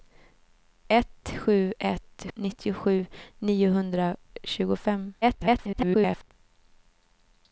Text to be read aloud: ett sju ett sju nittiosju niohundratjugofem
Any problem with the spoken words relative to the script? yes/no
yes